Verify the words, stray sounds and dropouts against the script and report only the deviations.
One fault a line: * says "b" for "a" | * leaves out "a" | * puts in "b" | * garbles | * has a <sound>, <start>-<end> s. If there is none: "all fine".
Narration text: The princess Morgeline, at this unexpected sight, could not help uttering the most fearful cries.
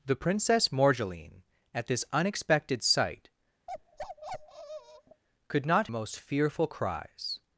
* has a bark, 3.7-5.2 s
* leaves out "help uttering the"